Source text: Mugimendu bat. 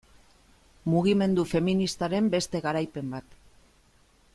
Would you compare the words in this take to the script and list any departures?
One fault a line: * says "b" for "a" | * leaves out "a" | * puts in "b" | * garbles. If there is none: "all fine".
* puts in "feministaren beste garaipen"